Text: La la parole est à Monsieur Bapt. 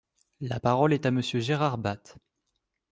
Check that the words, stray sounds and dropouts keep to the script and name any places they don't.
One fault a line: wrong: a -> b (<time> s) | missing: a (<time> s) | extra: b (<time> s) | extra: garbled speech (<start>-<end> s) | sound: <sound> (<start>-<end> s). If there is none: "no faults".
missing: la (0.6 s)
extra: Gérard (1.4 s)